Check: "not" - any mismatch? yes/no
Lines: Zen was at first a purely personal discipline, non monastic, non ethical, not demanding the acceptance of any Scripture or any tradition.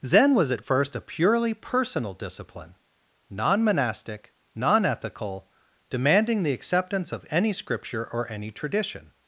yes